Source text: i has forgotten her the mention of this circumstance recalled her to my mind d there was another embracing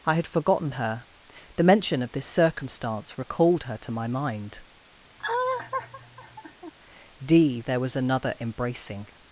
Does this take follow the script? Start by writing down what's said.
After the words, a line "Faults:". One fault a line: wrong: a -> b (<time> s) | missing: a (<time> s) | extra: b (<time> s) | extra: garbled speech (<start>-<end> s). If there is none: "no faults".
i had forgotten her the mention of this circumstance recalled her to my mind d there was another embracing
Faults:
wrong: has -> had (0.1 s)